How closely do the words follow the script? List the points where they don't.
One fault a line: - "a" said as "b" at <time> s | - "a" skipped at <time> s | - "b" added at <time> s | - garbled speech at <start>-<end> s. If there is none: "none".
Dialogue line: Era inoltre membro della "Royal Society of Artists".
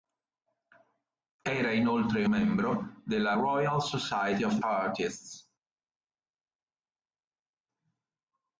none